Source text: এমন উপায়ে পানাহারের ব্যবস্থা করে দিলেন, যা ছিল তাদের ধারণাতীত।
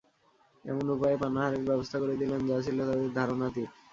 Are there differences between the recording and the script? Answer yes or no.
no